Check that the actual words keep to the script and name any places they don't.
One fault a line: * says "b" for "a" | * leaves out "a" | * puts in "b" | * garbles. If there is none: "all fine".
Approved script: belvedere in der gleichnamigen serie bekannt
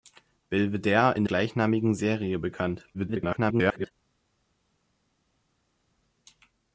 * leaves out "der"
* garbles